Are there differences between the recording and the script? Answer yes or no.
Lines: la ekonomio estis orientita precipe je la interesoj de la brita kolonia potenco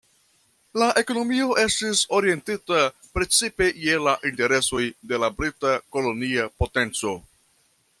no